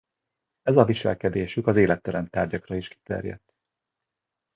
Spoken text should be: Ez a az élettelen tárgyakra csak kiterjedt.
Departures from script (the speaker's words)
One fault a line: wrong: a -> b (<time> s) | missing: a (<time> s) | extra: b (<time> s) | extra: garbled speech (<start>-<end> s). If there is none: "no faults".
extra: viselkedésük (0.8 s)
wrong: csak -> is (2.8 s)